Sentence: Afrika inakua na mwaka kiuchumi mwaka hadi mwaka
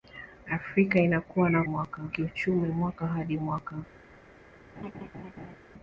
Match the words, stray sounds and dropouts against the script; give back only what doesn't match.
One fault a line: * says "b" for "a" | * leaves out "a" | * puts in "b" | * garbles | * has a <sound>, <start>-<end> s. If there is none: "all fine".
* has a laugh, 4.8-5.6 s